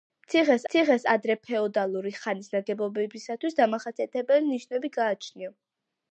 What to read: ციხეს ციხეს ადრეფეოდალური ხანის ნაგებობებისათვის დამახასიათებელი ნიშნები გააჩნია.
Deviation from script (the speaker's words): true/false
false